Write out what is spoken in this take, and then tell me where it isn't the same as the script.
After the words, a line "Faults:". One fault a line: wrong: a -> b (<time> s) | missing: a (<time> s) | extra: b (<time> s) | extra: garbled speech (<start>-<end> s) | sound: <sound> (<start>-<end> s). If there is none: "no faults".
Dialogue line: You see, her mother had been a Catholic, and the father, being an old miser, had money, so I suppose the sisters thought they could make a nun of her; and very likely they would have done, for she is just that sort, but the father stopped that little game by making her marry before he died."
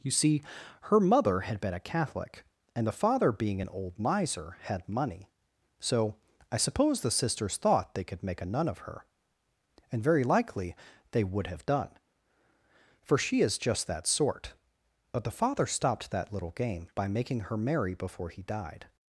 You see, her mother had been a Catholic, and the father, being an old miser, had money, so I suppose the sisters thought they could make a nun of her; and very likely they would have done, for she is just that sort, but the father stopped that little game by making her marry before he died."
Faults:
no faults